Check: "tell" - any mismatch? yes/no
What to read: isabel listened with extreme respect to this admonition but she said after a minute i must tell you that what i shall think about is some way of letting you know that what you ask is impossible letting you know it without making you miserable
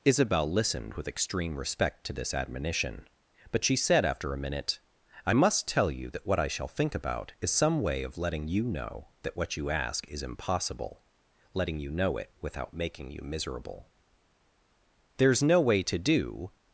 no